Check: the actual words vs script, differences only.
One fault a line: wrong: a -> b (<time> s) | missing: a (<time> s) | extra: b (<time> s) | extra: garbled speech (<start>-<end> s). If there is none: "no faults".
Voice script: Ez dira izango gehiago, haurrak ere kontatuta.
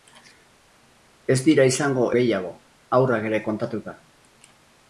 no faults